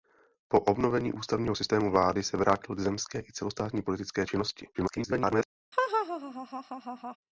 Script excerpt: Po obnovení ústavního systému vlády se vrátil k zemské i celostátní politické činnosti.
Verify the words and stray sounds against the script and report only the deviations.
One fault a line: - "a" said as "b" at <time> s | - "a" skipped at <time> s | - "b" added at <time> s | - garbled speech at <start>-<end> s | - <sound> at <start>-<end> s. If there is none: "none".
- garbled speech at 4.7-5.5 s
- laugh at 5.7-7.2 s